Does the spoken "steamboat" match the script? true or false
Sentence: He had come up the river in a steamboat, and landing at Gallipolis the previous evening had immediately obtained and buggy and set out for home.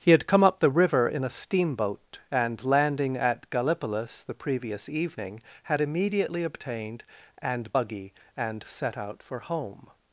true